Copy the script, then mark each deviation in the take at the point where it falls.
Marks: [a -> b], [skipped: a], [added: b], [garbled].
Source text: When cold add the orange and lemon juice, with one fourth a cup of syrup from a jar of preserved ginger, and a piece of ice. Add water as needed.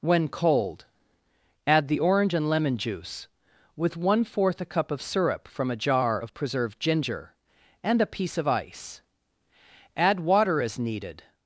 When cold add the orange and lemon juice, with one fourth a cup of syrup from a jar of preserved ginger, and a piece of ice. Add water as needed.